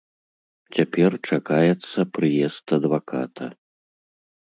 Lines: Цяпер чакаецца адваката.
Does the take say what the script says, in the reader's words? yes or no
no